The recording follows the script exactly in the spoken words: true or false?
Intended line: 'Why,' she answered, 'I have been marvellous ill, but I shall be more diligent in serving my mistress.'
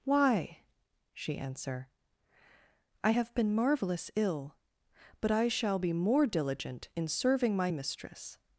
false